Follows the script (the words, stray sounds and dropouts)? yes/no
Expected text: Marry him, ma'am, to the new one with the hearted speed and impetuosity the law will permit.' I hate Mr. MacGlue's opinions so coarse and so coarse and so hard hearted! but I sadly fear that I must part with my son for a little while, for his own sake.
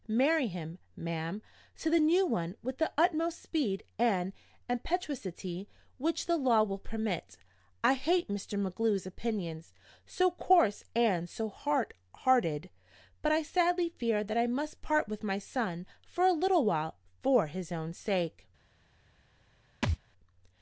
no